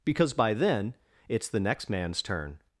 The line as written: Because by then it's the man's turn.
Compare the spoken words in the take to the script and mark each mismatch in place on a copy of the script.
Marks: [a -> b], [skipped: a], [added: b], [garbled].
Because by then it's the [added: next] man's turn.